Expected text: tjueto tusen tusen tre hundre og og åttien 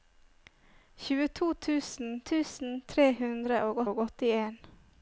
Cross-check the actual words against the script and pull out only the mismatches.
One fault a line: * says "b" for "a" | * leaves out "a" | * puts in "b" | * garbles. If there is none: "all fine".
all fine